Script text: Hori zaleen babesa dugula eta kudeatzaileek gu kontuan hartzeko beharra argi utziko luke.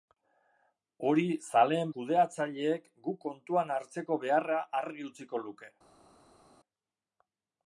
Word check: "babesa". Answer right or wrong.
wrong